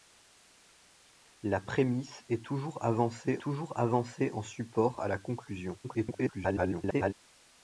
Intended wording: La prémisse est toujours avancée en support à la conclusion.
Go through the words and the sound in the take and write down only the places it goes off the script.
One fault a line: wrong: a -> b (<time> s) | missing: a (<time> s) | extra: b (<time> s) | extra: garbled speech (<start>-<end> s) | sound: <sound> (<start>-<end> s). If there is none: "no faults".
extra: toujours avancée (3.4 s)
extra: garbled speech (5.8-7.1 s)